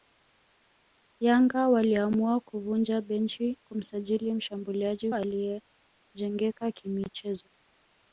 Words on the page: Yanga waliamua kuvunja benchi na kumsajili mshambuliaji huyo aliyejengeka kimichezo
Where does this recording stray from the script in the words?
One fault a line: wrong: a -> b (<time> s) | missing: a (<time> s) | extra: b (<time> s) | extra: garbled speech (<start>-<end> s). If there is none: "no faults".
missing: na (3.6 s)
missing: huyo (5.1 s)